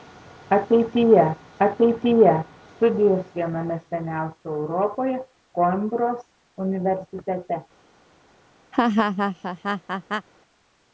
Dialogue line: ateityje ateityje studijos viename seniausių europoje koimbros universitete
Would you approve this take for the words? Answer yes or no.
yes